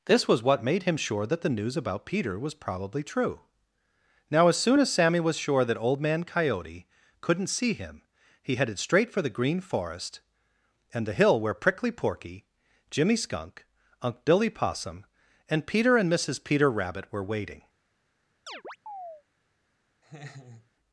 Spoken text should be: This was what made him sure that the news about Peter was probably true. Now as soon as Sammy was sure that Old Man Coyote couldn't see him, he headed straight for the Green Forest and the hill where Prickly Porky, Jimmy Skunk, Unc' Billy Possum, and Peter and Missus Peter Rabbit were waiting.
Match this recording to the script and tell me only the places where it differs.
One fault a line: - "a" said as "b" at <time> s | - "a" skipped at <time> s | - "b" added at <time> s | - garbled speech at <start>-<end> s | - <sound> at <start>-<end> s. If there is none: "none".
- chirp at 18.5-19.2 s
- laugh at 20.0-20.7 s